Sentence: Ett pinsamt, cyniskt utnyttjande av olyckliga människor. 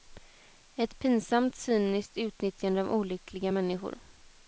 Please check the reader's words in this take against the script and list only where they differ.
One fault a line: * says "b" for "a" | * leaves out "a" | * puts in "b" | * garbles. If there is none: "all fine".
all fine